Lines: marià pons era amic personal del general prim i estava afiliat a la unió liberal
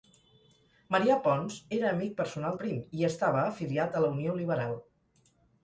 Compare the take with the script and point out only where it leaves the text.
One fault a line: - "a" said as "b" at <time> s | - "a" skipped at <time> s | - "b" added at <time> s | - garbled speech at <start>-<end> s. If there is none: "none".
- "del general" skipped at 2.6 s